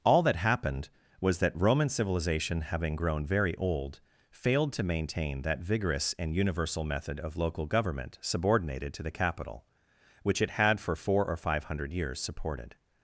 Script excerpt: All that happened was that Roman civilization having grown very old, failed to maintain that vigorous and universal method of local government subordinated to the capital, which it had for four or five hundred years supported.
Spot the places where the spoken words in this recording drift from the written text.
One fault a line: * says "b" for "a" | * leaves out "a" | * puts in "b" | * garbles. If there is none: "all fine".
all fine